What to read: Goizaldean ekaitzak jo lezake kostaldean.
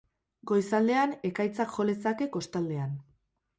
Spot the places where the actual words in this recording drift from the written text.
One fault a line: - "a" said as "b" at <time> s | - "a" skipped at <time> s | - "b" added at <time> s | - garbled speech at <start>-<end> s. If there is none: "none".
none